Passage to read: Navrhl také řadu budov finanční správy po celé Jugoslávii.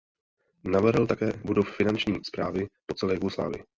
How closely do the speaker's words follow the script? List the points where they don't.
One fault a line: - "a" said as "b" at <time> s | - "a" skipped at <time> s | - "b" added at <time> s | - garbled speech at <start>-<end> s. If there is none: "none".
- "řadu" skipped at 1.3 s